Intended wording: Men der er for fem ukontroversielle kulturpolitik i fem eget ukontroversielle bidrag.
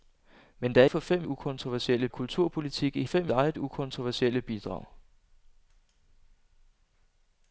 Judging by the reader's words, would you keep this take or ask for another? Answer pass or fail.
pass